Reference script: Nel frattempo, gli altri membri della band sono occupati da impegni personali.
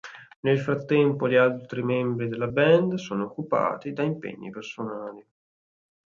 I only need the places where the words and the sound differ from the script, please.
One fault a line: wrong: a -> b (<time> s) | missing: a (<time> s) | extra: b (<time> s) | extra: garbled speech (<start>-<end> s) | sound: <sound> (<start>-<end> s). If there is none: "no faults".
no faults